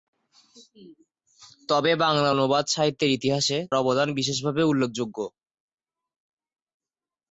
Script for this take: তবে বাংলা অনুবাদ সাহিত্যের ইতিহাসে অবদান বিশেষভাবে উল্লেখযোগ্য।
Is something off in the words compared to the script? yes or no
no